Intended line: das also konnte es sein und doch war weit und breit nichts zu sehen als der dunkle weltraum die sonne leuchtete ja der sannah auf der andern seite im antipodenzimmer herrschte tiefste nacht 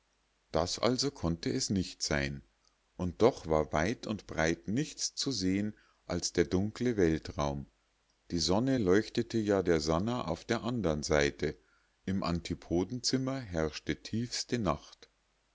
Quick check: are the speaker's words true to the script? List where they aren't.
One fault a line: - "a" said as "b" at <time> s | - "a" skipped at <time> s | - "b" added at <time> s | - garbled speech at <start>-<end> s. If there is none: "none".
- "nicht" added at 1.7 s